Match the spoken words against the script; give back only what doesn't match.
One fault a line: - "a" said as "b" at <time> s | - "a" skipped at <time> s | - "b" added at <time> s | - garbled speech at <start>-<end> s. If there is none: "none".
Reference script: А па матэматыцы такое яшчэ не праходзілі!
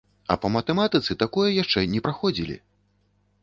none